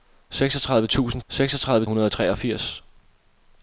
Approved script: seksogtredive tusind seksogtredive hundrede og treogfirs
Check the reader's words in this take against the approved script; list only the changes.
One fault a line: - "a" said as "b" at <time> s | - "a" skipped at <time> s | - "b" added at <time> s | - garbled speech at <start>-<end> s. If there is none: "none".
none